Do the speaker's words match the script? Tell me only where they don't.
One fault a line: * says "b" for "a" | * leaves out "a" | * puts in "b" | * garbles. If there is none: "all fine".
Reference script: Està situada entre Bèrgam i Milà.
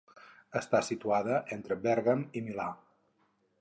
all fine